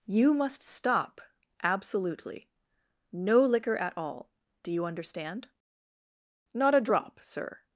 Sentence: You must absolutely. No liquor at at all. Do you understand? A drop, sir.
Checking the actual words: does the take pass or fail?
fail